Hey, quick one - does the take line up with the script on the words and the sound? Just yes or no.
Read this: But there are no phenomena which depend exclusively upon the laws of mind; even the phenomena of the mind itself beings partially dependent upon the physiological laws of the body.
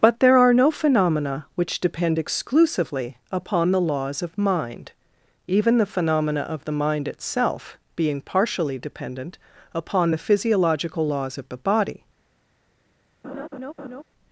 no